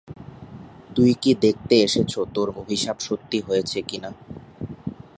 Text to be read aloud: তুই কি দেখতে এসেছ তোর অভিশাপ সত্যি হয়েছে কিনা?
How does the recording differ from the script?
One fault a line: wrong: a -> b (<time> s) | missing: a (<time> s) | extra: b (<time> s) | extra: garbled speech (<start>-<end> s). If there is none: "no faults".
no faults